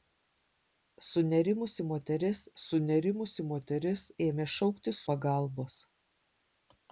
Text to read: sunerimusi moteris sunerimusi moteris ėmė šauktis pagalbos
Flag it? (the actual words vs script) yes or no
no